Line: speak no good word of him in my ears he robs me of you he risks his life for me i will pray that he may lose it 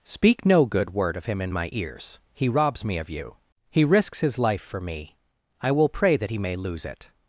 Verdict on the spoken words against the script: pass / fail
pass